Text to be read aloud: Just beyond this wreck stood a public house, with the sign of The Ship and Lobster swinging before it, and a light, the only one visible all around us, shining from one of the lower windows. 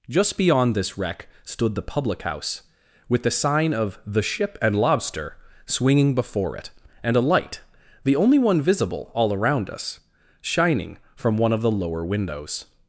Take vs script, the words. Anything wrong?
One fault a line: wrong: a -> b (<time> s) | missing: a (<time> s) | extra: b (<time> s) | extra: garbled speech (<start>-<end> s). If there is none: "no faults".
wrong: a -> the (1.8 s)